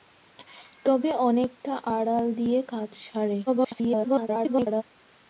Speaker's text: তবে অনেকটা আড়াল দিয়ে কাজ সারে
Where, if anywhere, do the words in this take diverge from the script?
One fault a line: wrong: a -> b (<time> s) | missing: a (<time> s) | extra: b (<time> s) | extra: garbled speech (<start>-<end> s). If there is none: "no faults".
extra: garbled speech (3.5-4.8 s)